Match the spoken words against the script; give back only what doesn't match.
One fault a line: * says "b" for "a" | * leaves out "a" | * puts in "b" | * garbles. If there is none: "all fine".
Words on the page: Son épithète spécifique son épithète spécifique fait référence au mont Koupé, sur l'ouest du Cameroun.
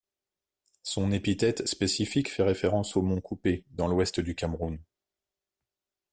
* leaves out "son épithète spécifique"
* says "dans" for "sur"